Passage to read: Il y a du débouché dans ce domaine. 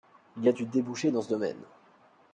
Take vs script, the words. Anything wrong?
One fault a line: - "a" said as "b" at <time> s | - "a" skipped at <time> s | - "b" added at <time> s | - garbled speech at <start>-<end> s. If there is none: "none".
none